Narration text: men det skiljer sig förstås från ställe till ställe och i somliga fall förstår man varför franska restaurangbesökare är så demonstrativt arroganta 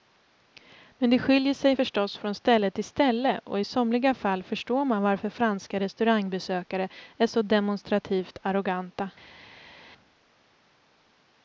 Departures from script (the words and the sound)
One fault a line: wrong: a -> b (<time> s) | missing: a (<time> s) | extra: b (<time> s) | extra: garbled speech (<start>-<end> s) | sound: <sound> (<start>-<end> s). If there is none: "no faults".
no faults